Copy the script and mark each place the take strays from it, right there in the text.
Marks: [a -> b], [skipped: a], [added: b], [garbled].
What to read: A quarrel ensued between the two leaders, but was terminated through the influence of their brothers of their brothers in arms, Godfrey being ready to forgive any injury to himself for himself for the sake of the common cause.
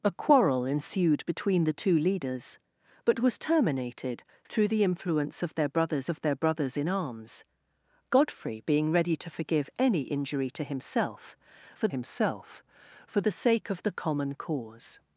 A quarrel ensued between the two leaders, but was terminated through the influence of their brothers of their brothers in arms, Godfrey being ready to forgive any injury to himself for himself for the sake of the common cause.